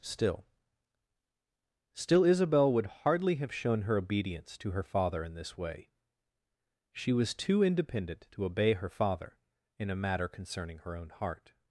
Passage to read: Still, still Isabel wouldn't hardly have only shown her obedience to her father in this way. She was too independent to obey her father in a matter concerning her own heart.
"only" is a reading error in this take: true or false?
true